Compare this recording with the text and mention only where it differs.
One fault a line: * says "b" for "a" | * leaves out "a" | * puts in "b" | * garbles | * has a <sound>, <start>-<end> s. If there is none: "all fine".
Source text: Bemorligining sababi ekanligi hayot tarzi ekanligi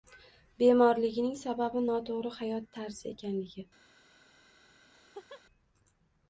* says "noto‘g‘ri" for "ekanligi"
* has a laugh, 4.9-5.4 s